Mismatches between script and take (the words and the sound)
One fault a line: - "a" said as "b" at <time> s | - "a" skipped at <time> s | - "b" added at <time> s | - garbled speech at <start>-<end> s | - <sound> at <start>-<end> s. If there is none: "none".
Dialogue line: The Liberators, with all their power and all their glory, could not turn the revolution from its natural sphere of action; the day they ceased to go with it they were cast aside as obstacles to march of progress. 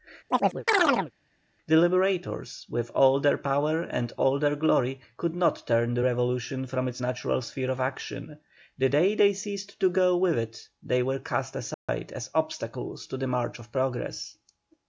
- chirp at 0.3-1.1 s
- dropout at 11.7-11.9 s
- "the" added at 13.2 s